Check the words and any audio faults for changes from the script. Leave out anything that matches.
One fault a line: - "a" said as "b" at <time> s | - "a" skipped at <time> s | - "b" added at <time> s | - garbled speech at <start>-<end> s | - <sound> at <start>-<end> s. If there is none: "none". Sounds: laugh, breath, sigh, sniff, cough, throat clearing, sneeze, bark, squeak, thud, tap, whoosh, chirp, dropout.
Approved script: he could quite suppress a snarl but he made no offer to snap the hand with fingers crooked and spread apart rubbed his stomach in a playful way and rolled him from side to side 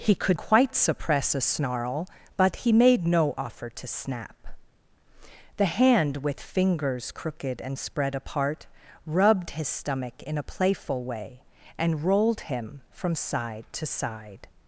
none